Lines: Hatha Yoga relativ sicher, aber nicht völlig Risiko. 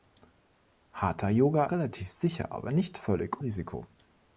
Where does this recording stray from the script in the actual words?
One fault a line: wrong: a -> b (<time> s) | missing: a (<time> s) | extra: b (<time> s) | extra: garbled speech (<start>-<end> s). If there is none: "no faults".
no faults